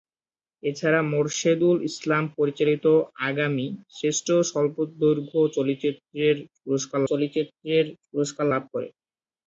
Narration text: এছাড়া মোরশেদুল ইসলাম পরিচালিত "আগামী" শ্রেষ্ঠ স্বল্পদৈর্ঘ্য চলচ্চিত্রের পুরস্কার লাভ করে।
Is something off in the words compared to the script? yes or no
yes